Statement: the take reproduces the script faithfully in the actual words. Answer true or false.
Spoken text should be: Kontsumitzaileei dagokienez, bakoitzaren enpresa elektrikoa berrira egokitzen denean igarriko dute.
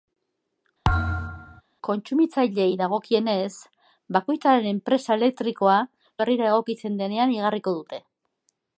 true